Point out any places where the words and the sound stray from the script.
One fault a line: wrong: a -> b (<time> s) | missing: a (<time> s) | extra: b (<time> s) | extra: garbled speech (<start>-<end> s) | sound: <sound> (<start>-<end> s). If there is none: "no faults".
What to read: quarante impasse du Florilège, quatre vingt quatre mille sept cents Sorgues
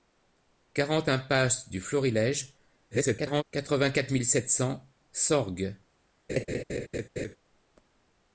extra: garbled speech (2.9-3.4 s)
sound: laugh (6.3-7.4 s)